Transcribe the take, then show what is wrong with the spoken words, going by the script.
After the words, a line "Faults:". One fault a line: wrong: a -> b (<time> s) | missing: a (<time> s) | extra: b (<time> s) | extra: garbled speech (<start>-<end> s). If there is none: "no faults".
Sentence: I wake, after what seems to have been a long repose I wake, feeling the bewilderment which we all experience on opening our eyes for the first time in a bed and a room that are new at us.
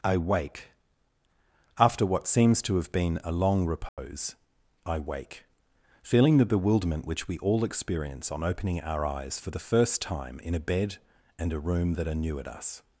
I wake, after what seems to have been a long repose I wake, feeling the bewilderment which we all experience on opening our eyes for the first time in a bed and a room that are new at us.
Faults:
no faults